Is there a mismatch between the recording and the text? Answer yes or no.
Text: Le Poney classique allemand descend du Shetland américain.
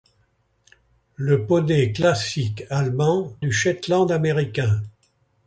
yes